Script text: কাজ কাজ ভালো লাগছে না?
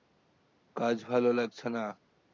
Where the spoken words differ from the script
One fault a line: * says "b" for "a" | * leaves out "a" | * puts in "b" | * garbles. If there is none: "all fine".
* leaves out "কাজ"